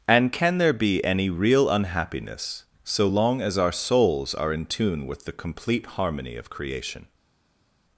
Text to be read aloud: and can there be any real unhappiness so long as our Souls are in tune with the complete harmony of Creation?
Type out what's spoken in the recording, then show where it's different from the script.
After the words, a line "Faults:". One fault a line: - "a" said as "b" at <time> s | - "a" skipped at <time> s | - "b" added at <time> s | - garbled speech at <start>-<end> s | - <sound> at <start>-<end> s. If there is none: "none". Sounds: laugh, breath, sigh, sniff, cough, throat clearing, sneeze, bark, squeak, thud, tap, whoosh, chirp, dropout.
and can there be any real unhappiness so long as our Souls are in tune with the complete harmony of Creation?
Faults:
none